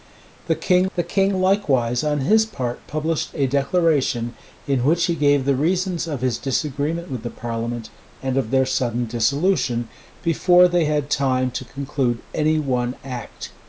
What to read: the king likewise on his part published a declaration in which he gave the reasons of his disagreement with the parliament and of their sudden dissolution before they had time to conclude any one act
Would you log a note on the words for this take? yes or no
yes